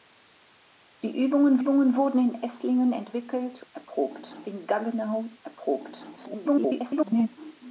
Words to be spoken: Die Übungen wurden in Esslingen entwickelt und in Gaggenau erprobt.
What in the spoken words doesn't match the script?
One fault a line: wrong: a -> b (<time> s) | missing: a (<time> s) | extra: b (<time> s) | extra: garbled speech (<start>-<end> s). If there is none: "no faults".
extra: Übungen (1.6 s)
wrong: und -> erprobt (3.7 s)
extra: garbled speech (6.2-7.3 s)